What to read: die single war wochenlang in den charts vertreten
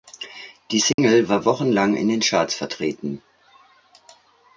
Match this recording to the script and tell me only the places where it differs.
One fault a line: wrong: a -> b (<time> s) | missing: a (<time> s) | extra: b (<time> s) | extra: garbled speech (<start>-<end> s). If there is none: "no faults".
no faults